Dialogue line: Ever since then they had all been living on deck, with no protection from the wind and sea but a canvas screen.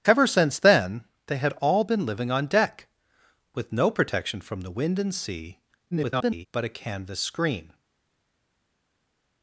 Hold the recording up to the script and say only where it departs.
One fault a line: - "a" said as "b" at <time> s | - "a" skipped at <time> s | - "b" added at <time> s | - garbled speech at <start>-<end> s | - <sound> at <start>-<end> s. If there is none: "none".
- garbled speech at 5.9-6.5 s